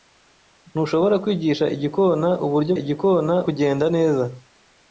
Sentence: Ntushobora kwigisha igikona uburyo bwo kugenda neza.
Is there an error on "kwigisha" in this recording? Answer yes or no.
no